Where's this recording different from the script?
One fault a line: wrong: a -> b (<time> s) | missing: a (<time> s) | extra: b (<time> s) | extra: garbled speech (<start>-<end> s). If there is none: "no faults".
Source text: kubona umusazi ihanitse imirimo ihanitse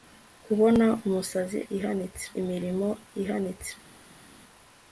no faults